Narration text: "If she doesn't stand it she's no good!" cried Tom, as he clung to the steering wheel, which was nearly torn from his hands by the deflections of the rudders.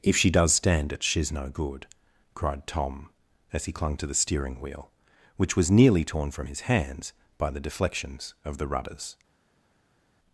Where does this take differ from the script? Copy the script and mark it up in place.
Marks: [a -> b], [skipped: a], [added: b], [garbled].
"If she [doesn't -> does] stand it she's no good!" cried Tom, as he clung to the steering wheel, which was nearly torn from his hands by the deflections of the rudders.